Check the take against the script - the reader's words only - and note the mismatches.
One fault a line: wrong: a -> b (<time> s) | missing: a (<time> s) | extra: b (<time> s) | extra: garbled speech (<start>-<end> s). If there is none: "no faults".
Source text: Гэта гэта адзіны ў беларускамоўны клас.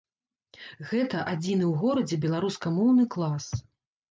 missing: гэта (1.2 s)
extra: горадзе (1.8 s)